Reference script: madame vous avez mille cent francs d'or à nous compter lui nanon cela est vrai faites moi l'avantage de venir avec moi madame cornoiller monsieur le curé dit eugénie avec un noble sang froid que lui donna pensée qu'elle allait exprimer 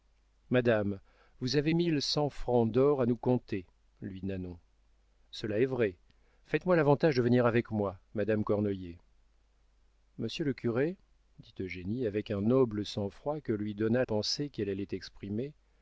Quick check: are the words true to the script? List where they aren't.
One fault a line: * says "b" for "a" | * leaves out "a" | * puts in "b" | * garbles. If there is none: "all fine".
all fine